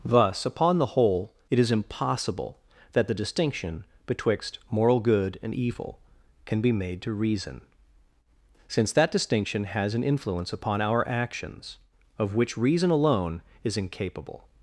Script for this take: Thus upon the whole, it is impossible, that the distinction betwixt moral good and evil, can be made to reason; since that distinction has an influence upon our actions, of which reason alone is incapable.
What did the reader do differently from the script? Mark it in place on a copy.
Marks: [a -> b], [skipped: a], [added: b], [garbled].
Thus upon the whole, it is impossible, that the distinction betwixt moral good and evil, can be made to reason; since that distinction has an influence upon our actions, of which reason alone is incapable.